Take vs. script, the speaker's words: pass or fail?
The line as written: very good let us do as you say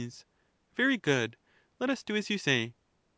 pass